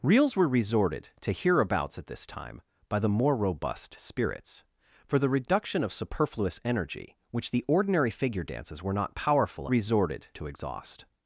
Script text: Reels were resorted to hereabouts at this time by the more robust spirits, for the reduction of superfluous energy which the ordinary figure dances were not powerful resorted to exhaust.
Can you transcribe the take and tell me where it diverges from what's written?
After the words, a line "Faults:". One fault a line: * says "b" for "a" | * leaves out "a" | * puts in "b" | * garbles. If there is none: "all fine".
Reels were resorted to hereabouts at this time by the more robust spirits, for the reduction of superfluous energy which the ordinary figure dances were not powerful resorted to exhaust.
Faults:
all fine